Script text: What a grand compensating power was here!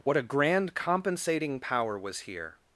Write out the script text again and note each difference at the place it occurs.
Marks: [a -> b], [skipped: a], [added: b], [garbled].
What a grand compensating power was here!